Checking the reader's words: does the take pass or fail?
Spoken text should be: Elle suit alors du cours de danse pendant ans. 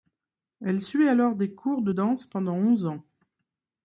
fail